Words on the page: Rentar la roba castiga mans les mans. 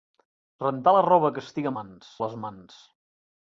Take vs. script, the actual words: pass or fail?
pass